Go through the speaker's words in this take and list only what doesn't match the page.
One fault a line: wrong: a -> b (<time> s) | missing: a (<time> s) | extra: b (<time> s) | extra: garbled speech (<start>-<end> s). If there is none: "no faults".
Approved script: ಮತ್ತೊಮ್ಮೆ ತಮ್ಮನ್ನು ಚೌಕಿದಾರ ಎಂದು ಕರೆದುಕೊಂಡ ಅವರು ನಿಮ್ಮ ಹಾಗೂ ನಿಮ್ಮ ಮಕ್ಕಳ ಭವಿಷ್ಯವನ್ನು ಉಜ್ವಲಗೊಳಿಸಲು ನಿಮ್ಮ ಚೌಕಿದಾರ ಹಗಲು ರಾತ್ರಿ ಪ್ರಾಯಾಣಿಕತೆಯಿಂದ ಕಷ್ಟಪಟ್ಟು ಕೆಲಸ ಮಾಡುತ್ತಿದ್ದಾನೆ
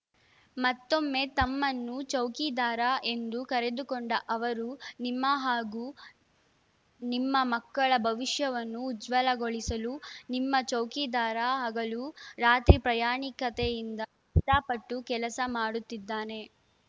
no faults